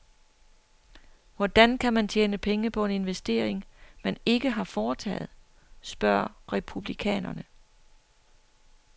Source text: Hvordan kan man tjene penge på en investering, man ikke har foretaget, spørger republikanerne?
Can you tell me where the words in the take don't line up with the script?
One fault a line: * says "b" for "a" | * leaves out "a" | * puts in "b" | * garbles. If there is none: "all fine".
all fine